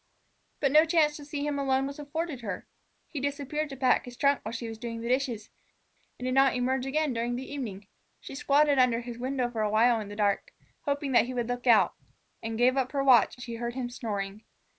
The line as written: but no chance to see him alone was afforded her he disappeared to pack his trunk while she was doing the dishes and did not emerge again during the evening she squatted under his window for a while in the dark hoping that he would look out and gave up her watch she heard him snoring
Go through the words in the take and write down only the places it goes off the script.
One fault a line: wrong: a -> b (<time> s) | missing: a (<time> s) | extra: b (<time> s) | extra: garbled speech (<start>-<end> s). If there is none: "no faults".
no faults